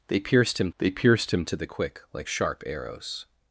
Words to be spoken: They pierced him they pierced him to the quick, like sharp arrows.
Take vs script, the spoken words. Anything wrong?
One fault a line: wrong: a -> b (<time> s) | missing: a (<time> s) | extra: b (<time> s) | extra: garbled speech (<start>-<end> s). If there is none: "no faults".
no faults